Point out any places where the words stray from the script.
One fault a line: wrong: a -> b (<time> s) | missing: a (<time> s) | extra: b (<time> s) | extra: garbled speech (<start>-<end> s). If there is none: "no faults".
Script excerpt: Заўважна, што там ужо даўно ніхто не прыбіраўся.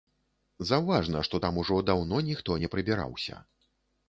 no faults